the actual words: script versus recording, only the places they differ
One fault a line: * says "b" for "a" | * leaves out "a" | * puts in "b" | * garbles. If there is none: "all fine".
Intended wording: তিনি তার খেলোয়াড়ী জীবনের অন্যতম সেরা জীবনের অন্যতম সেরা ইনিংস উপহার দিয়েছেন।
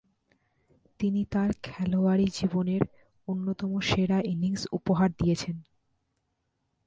* leaves out "জীবনের অন্যতম সেরা"